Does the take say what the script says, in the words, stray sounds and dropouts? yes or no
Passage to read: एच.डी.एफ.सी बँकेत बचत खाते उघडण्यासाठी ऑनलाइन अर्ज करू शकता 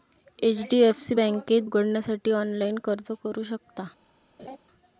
no